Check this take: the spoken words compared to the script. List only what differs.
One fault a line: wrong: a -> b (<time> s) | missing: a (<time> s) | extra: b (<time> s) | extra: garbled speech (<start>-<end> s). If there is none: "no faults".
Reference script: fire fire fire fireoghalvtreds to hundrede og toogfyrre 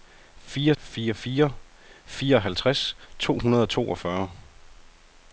no faults